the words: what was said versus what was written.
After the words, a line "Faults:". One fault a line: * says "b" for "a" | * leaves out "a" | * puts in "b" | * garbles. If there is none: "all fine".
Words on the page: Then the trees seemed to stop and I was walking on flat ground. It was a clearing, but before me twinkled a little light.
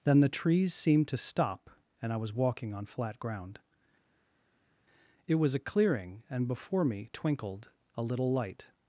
Then the trees seemed to stop and I was walking on flat ground. It was a clearing, and before me twinkled a little light.
Faults:
* says "and" for "but"